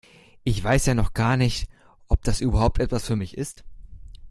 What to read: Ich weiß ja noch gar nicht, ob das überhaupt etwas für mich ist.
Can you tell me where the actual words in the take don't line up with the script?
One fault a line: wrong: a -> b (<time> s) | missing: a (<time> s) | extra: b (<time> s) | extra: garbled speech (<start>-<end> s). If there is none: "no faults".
no faults